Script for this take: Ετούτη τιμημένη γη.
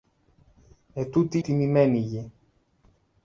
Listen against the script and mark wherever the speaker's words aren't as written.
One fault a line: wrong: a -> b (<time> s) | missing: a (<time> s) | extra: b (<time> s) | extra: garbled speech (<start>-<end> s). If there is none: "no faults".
no faults